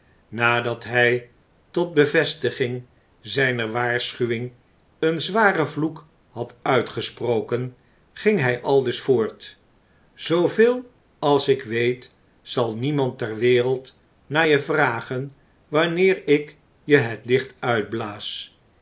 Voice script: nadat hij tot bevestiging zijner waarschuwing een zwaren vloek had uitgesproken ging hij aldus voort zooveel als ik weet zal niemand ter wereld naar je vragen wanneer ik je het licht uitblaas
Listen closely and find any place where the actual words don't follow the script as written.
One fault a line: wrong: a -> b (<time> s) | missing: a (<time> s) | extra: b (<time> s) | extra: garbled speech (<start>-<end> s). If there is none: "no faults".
no faults